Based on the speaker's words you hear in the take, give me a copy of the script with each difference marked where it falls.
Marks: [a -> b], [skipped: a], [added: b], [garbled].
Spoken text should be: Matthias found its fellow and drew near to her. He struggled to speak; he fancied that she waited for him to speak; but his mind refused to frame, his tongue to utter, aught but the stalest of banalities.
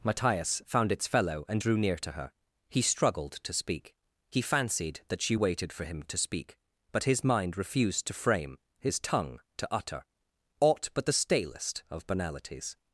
Matthias found its fellow and drew near to her. He struggled to speak; he fancied that she waited for him to speak; but his mind refused to frame, his tongue to utter, aught but the stalest of banalities.